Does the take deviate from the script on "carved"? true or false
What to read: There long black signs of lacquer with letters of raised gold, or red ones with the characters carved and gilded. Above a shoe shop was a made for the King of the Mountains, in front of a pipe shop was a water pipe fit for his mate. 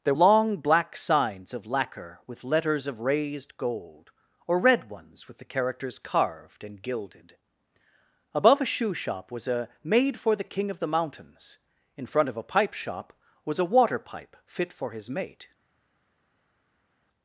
false